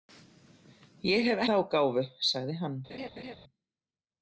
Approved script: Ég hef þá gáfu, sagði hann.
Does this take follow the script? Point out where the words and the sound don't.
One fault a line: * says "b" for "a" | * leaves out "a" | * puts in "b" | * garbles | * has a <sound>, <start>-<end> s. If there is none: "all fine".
* has a laugh, 2.9-3.4 s